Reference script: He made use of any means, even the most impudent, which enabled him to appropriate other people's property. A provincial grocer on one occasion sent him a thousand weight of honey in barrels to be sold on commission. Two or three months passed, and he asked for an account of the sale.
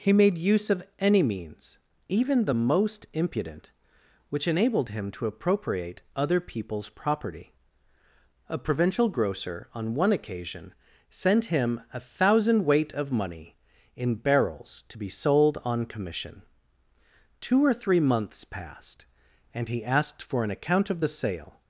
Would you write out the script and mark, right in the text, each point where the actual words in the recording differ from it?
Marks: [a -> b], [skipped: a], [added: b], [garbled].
He made use of any means, even the most impudent, which enabled him to appropriate other people's property. A provincial grocer on one occasion sent him a thousand weight of [honey -> money] in barrels to be sold on commission. Two or three months passed, and he asked for an account of the sale.